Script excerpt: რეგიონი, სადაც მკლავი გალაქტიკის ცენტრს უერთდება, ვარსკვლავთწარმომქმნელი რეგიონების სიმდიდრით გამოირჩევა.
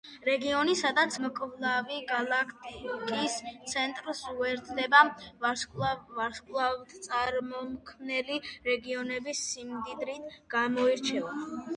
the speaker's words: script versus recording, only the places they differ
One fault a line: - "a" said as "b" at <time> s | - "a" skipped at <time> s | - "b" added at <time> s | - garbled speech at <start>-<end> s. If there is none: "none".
none